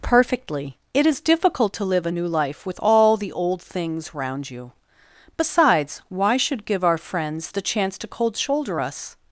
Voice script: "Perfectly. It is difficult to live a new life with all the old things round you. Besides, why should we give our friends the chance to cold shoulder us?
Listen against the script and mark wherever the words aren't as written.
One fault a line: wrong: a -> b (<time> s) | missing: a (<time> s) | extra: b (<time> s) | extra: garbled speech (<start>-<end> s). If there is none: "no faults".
missing: we (6.7 s)